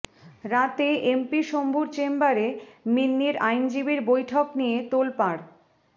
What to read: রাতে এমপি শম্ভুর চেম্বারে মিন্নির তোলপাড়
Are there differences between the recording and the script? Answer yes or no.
yes